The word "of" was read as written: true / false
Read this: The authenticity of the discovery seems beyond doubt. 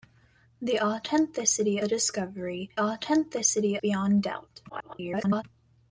false